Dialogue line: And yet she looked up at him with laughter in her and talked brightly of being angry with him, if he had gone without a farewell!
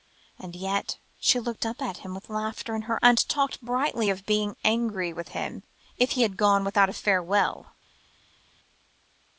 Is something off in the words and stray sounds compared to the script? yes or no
no